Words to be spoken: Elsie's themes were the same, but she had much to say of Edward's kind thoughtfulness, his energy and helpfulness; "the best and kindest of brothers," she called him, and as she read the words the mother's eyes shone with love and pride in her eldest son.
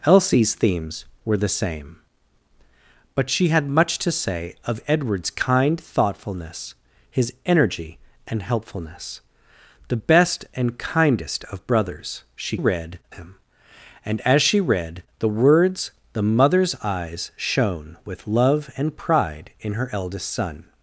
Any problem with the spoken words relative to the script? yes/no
yes